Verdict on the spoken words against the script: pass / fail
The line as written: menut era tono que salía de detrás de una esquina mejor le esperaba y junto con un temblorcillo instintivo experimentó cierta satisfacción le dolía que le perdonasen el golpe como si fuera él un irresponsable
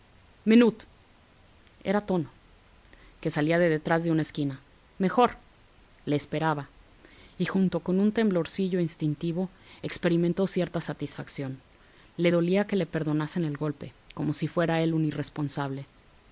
pass